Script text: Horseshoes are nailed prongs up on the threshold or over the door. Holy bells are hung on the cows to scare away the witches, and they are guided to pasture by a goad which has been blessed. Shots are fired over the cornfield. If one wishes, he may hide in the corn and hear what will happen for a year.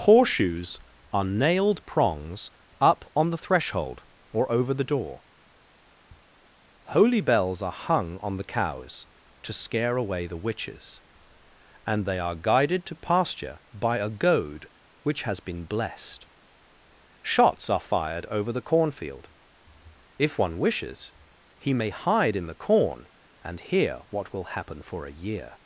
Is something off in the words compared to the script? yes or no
no